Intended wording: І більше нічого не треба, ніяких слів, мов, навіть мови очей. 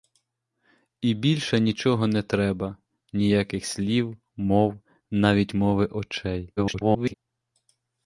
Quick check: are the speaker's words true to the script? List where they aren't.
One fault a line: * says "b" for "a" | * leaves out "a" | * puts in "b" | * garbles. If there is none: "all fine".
* garbles